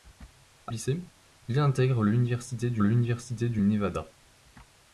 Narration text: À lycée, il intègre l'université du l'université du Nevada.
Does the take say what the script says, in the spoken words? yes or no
yes